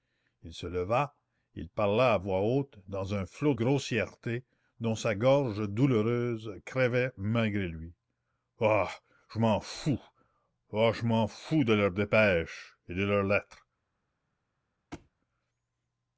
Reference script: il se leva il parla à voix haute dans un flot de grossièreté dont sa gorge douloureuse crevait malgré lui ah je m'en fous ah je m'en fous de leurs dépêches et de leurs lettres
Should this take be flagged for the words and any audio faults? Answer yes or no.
yes